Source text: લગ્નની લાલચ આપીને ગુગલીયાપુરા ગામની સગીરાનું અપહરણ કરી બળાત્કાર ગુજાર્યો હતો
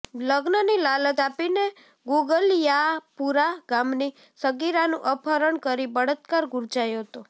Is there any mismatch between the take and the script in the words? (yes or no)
no